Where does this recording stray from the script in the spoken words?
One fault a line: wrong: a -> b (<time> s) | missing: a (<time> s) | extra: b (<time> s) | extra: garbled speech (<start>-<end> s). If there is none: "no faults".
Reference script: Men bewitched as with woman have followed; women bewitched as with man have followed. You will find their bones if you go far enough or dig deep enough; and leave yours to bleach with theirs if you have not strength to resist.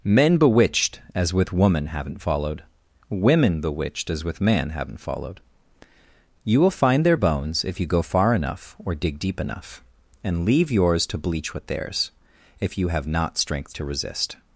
wrong: have -> haven't (1.9 s)
wrong: have -> haven't (4.7 s)